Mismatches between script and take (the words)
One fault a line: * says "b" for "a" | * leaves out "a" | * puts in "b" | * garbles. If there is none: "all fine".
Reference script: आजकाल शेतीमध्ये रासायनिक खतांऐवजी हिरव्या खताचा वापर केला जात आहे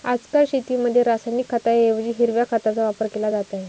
all fine